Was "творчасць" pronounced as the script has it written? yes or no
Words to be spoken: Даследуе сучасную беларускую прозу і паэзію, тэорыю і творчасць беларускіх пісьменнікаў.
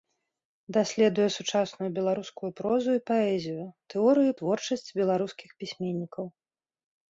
yes